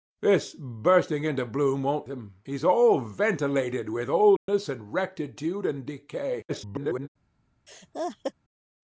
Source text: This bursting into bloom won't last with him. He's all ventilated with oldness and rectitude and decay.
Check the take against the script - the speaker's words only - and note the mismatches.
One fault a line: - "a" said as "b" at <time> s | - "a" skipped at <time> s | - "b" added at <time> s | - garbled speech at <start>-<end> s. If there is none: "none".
- "last with" skipped at 2.1 s
- garbled speech at 6.5-7.1 s